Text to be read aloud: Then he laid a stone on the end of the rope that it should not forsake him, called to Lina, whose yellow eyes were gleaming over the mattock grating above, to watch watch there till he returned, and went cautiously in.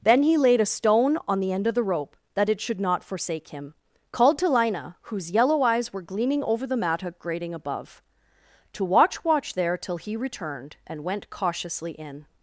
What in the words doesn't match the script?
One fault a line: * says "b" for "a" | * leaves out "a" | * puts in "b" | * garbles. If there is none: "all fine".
all fine